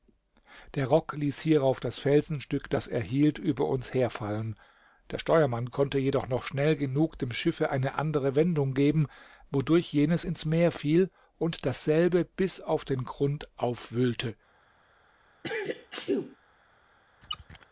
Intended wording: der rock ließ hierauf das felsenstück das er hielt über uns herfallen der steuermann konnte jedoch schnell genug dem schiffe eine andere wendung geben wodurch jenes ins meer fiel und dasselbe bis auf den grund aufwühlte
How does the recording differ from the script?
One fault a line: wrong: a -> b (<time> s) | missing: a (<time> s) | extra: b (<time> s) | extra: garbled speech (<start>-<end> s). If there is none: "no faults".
extra: noch (6.3 s)